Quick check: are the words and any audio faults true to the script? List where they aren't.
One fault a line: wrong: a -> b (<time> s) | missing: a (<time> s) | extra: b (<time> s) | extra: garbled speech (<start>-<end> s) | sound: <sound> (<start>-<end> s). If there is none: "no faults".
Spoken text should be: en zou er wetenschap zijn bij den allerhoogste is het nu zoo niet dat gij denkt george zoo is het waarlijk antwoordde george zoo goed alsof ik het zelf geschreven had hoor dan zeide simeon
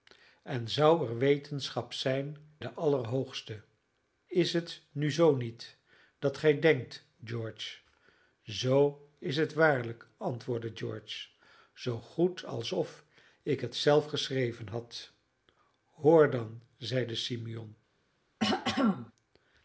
missing: bij (2.4 s)
sound: throat clearing (18.4-19.1 s)